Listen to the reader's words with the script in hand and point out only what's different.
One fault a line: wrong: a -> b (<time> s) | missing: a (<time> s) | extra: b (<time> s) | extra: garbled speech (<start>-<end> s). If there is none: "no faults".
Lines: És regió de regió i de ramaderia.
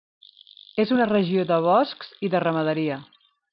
extra: una (0.9 s)
wrong: regió -> boscs (1.7 s)